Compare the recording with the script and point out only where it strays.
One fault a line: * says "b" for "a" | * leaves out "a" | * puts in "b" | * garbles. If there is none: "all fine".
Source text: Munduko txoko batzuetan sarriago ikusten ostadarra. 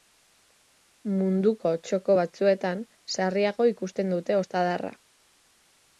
* puts in "dute"